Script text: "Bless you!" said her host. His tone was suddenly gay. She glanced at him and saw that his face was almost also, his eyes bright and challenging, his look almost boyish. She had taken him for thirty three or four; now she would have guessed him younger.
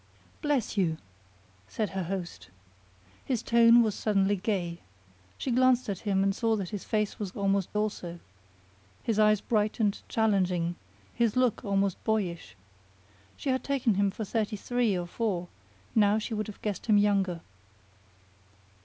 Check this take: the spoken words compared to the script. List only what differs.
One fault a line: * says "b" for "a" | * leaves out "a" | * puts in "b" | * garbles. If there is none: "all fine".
all fine